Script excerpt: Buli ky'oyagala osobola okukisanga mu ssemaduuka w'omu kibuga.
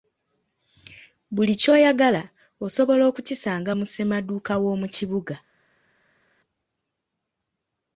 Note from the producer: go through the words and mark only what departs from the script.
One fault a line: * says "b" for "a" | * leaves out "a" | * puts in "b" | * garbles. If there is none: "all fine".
all fine